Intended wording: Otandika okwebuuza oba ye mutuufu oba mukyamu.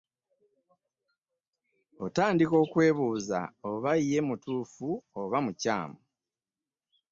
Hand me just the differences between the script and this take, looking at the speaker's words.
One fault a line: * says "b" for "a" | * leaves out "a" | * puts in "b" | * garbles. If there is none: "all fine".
all fine